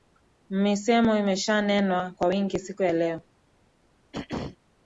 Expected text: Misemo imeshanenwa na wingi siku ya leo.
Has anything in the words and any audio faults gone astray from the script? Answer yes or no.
yes